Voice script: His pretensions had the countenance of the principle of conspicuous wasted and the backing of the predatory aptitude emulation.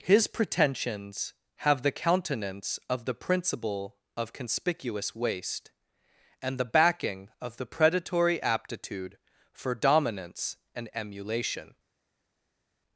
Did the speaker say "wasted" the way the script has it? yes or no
no